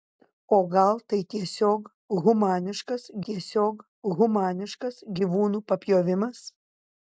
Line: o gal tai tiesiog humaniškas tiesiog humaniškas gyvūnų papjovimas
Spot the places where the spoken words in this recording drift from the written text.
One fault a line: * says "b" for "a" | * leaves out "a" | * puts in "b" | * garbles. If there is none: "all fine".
all fine